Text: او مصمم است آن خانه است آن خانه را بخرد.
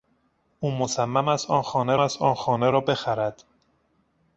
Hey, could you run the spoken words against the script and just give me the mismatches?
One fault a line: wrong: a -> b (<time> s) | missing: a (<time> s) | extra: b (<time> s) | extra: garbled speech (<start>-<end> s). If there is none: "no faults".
no faults